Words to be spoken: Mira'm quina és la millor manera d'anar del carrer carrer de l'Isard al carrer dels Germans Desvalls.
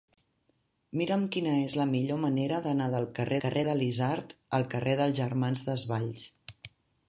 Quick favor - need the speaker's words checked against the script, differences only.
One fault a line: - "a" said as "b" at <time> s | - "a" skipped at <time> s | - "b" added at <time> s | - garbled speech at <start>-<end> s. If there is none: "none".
none